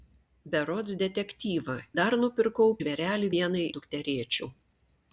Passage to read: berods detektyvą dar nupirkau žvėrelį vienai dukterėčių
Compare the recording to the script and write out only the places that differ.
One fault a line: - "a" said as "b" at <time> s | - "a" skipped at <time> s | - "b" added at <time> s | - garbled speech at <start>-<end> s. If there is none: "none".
none